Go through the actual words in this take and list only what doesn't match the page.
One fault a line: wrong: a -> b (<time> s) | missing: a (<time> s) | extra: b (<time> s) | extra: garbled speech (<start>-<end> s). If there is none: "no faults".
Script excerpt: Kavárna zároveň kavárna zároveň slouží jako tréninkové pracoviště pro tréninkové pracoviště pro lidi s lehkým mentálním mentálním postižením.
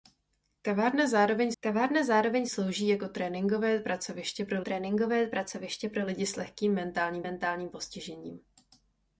no faults